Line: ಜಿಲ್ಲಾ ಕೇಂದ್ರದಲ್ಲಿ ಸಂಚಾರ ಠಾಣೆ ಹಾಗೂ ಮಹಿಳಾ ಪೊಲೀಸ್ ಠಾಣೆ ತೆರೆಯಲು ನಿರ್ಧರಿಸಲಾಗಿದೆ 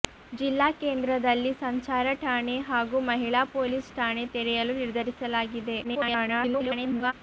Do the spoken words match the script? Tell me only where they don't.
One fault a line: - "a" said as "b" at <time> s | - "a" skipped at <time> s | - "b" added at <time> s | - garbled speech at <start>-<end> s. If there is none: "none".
- garbled speech at 5.8-7.1 s